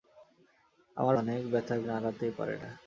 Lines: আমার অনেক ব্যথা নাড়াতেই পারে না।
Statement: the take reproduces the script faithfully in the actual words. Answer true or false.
true